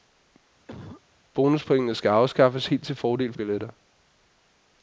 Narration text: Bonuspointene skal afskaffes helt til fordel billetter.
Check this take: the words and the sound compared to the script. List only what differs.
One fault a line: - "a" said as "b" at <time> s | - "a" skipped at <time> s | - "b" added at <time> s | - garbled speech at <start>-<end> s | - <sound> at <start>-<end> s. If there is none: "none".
- cough at 0.7-1.0 s